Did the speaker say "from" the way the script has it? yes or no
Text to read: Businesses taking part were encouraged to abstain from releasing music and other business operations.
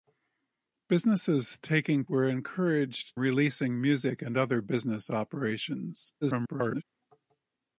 no